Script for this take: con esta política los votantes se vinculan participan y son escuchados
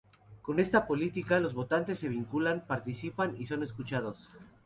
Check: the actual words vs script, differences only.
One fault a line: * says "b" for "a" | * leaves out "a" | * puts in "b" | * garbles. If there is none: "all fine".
all fine